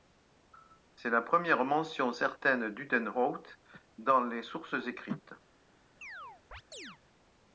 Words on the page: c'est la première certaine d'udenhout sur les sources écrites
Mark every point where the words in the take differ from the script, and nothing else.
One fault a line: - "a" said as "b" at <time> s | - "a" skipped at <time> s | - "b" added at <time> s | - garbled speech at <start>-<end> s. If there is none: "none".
- "mention" added at 1.6 s
- "sur" said as "dans" at 4.0 s